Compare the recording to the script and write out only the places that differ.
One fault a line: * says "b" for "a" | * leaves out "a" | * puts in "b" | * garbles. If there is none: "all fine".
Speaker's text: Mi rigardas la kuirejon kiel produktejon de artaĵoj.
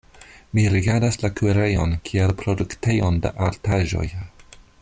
all fine